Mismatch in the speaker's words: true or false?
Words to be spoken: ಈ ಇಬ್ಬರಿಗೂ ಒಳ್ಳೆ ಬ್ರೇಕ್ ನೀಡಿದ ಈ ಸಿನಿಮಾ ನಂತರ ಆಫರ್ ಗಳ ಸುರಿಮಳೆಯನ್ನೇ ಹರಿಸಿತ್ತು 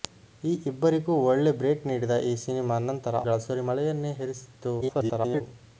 true